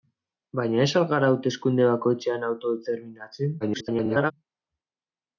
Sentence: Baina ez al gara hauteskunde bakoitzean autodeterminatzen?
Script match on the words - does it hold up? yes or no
no